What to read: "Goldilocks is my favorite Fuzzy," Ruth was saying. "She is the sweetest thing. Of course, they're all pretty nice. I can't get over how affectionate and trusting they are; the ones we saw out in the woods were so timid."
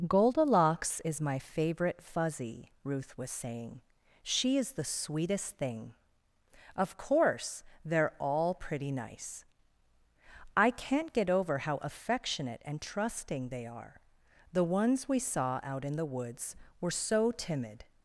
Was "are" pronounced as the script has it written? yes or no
yes